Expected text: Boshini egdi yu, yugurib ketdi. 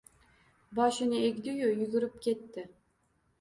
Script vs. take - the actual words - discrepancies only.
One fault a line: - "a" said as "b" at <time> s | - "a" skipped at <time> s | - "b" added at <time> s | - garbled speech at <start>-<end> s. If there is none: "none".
none